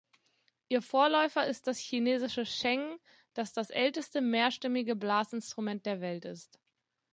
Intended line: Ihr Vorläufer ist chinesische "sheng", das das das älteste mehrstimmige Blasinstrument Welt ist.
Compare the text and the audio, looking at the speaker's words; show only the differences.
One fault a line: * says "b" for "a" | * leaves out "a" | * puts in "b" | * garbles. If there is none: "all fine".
* puts in "das"
* leaves out "das"
* puts in "der"